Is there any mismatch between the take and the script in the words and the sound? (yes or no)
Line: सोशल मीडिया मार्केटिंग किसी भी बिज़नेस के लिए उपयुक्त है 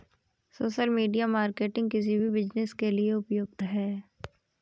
no